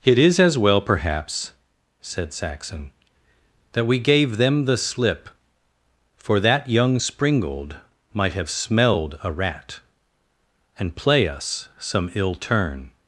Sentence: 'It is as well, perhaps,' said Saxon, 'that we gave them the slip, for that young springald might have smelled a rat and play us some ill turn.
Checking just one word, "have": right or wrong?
right